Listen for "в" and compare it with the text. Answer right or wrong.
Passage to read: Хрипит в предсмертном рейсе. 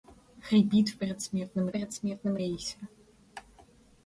right